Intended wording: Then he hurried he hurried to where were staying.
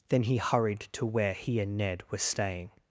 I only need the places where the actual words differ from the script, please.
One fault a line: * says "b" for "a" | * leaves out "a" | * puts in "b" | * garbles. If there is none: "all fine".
* puts in "to where"
* says "and Ned" for "hurried to where"